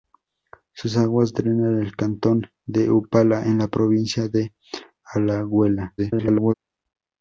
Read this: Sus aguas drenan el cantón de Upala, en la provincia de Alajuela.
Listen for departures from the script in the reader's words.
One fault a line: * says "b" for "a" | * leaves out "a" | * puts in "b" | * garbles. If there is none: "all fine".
* garbles